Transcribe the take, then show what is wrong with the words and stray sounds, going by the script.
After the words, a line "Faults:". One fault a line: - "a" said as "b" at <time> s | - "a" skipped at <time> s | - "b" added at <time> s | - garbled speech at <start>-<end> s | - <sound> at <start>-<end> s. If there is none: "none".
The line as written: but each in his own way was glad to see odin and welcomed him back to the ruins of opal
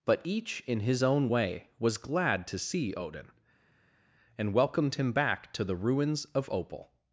but each in his own way was glad to see odin and welcomed him back to the ruins of opal
Faults:
none